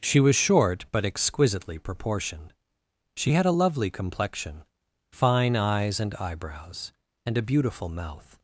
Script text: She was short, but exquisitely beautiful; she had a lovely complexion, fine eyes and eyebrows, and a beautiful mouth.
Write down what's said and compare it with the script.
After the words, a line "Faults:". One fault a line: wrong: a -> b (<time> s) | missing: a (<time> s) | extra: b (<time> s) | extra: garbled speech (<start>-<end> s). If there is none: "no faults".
She was short, but exquisitely proportioned; she had a lovely complexion, fine eyes and eyebrows, and a beautiful mouth.
Faults:
wrong: beautiful -> proportioned (1.8 s)